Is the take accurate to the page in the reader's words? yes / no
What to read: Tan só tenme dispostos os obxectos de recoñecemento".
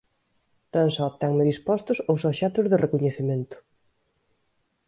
yes